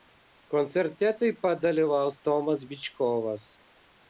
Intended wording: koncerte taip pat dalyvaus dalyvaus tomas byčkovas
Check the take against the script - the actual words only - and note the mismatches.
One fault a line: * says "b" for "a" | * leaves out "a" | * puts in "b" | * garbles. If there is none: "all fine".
* leaves out "dalyvaus"